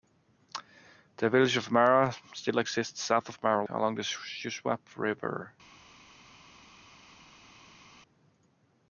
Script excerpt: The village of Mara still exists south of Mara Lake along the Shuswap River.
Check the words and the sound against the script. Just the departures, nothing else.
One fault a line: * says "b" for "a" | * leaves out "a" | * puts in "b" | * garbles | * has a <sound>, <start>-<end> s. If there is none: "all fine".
* leaves out "Lake"